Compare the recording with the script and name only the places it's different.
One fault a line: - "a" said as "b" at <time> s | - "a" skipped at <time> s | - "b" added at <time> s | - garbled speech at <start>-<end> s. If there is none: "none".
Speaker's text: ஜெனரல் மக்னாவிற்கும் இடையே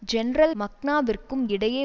none